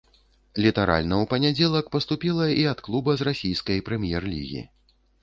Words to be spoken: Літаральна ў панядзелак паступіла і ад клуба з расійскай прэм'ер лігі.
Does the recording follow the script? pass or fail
pass